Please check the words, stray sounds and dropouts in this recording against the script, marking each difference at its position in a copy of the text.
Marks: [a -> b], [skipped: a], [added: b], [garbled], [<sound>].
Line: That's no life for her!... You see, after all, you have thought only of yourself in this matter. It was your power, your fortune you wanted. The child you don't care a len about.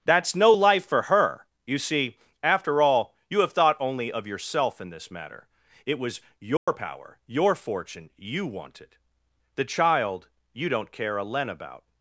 That's no life for her!... You see, after all, you have thought only of yourself in this matter. It was your [dropout] power, your fortune you wanted. The child you don't care a len about.